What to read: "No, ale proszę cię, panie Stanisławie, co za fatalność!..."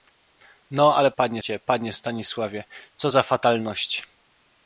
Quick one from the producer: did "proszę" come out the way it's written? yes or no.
no